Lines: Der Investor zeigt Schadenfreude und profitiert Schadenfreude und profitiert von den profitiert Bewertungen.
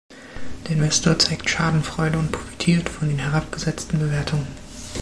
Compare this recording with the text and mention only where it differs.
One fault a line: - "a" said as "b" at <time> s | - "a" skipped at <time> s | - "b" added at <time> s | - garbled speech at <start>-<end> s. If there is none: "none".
- "Schadenfreude und profitiert" skipped at 2.9 s
- "profitiert" said as "herabgesetzten" at 3.2 s